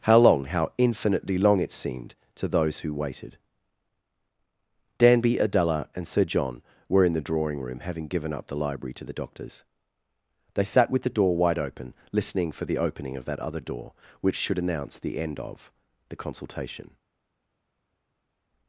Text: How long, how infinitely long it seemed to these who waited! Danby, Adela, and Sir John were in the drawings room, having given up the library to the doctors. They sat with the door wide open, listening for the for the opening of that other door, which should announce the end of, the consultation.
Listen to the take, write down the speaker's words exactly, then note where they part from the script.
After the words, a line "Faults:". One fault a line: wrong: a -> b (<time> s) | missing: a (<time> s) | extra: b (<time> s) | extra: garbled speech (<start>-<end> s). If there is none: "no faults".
How long, how infinitely long it seemed to those who waited! Danby, Adela, and Sir John were in the drawing room, having given up the library to the doctors. They sat with the door wide open, listening for the opening of that other door, which should announce the end of, the consultation.
Faults:
wrong: these -> those (2.5 s)
wrong: drawings -> drawing (7.3 s)
missing: for the (12.8 s)